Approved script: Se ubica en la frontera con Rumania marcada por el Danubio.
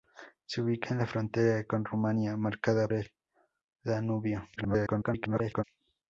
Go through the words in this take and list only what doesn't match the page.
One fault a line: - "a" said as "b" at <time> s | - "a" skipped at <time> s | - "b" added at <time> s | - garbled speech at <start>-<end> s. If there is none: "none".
- "por" skipped at 2.9 s
- garbled speech at 4.6-5.6 s